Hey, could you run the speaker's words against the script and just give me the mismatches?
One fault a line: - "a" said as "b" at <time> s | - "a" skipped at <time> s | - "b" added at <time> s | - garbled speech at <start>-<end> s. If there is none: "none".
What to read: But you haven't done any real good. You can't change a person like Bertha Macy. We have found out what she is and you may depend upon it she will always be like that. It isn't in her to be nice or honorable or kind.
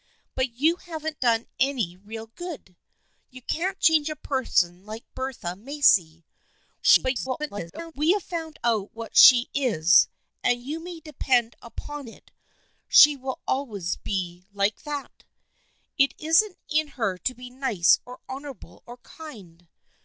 - garbled speech at 6.8-7.9 s